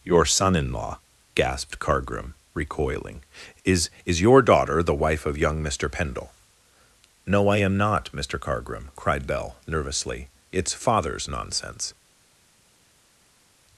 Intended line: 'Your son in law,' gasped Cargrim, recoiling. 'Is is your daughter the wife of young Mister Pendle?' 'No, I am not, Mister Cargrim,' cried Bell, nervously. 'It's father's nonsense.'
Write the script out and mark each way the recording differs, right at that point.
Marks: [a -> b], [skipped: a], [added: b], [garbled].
'Your son in law,' gasped Cargrim, recoiling. 'Is is your daughter the wife of young Mister Pendle?' 'No, I am not, Mister Cargrim,' cried Bell, nervously. 'It's father's nonsense.'